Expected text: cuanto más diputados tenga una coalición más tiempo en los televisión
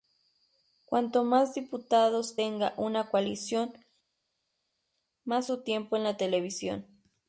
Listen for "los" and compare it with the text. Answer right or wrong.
wrong